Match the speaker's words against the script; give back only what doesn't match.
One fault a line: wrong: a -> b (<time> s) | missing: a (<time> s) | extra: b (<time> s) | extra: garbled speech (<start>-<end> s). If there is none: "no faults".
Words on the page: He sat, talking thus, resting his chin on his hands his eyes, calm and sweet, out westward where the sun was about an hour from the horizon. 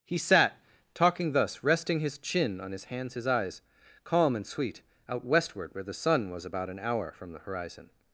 no faults